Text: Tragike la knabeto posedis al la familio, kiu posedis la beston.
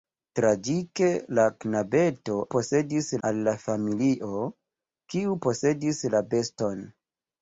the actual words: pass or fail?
pass